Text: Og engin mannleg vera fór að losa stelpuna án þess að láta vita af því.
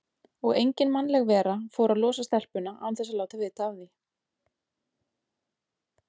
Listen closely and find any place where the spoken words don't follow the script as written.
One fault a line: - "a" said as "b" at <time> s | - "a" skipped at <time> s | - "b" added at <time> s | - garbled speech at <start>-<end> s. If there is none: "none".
none